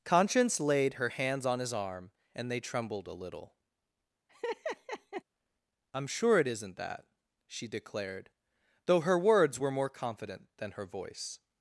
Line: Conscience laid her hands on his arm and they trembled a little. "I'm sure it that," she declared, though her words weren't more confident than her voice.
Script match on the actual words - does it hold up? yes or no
no